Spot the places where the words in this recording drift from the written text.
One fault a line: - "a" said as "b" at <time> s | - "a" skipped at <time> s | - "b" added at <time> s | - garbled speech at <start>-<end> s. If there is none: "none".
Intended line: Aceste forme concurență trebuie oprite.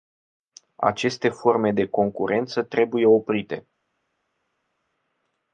- "de" added at 1.7 s